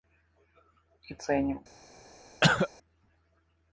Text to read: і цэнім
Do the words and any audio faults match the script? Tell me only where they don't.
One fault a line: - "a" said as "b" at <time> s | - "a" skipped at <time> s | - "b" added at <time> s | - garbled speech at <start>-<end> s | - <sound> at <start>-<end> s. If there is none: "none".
- cough at 2.4-2.7 s